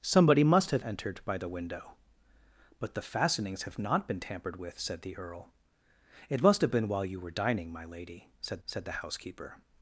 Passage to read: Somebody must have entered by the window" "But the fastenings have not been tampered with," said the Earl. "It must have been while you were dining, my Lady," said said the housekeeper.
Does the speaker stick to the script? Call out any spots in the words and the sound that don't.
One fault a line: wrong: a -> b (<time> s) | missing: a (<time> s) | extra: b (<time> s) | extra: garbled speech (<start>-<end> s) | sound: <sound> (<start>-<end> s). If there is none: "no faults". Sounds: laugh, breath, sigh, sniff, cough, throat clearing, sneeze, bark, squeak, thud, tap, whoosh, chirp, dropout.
no faults